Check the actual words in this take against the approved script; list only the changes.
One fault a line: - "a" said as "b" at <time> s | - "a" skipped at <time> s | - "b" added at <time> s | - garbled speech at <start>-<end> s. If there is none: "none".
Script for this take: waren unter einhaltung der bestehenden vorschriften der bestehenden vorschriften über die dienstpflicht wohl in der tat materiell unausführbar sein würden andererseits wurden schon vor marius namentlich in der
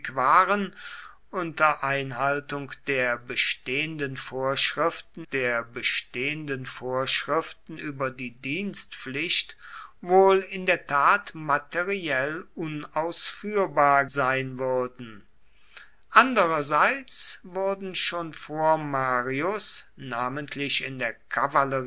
none